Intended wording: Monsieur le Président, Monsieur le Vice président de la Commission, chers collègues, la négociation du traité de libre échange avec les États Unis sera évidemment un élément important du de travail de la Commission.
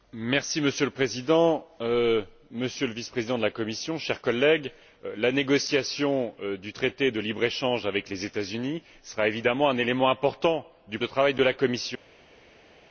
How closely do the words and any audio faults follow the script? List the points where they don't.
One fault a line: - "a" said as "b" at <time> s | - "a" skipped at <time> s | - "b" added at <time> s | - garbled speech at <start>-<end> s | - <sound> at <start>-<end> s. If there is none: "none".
none